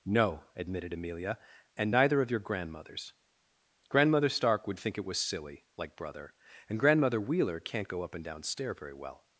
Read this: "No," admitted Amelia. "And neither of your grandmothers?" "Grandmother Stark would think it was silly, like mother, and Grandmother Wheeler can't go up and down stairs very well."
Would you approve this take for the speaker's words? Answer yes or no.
no